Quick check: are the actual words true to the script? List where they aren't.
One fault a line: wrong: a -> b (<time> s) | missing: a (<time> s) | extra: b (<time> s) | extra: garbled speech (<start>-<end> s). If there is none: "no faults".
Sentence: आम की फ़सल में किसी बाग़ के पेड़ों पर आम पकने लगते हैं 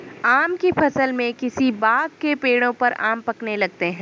no faults